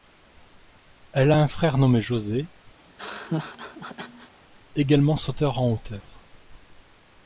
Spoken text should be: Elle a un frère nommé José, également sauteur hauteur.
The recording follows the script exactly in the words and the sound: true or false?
false